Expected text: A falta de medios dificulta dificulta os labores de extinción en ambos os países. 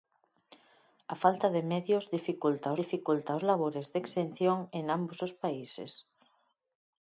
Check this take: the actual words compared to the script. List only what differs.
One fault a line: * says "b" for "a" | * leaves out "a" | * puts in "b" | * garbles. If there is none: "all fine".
all fine